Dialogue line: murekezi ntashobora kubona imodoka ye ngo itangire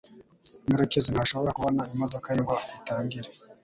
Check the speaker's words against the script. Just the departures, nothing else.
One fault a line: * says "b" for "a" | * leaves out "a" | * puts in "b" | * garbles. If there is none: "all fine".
all fine